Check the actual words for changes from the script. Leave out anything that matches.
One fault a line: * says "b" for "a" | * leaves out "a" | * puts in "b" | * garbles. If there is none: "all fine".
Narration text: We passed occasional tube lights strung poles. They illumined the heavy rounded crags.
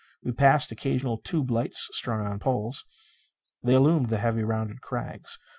* puts in "on"